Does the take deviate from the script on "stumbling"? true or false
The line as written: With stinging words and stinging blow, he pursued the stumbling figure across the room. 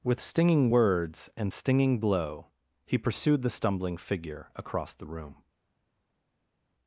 false